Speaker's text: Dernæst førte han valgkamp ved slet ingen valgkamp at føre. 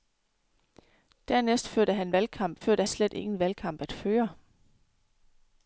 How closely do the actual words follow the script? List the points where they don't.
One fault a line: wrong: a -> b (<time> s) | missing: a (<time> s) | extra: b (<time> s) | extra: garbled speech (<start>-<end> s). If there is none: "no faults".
wrong: ved -> førte (2.6 s)